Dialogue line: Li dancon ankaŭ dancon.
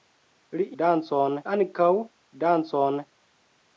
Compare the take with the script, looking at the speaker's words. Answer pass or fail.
pass